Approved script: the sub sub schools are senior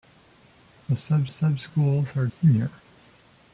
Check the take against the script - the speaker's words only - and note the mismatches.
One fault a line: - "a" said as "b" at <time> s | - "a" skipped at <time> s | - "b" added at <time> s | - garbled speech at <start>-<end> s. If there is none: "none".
none